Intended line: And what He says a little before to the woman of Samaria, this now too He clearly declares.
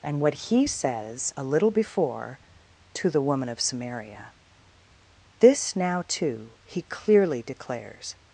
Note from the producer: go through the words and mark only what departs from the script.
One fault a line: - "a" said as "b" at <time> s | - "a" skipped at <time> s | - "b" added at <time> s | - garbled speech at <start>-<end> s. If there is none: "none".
none